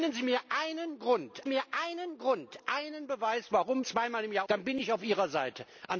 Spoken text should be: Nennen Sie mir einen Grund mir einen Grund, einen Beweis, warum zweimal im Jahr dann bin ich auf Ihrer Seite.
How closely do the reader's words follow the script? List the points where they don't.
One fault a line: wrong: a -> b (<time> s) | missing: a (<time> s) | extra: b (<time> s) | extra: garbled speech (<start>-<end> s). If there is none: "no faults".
no faults